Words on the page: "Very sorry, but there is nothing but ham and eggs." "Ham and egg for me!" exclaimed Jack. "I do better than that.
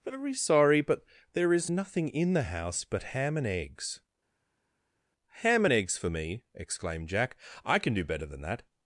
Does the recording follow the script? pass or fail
fail